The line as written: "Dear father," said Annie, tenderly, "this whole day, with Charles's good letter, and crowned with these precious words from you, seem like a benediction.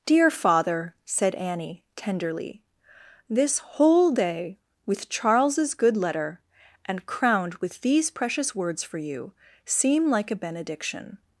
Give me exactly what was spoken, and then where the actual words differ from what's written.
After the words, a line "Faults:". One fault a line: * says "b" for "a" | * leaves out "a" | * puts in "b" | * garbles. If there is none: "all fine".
"Dear father," said Annie, tenderly, "this whole day, with Charles's good letter, and crowned with these precious words for you, seem like a benediction.
Faults:
* says "for" for "from"